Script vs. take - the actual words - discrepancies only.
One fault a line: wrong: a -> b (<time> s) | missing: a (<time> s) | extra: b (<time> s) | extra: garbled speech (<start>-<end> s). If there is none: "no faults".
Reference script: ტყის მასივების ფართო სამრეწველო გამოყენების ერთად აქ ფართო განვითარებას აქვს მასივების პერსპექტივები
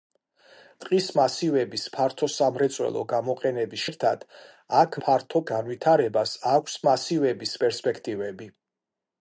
no faults